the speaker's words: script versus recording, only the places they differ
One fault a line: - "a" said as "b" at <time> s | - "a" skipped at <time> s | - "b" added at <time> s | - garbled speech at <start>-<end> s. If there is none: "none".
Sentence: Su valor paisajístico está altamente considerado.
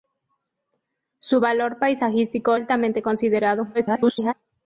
- "está" skipped at 2.6 s
- garbled speech at 3.7-4.3 s